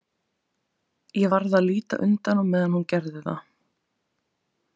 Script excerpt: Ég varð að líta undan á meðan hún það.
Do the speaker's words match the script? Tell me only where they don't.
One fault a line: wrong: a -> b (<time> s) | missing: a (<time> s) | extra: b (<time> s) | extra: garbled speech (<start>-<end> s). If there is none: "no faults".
extra: gerði (3.0 s)